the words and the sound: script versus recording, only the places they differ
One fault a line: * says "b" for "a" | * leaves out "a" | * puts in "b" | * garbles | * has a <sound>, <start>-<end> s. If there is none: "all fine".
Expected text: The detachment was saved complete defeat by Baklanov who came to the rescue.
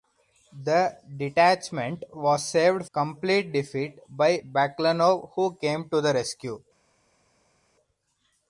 all fine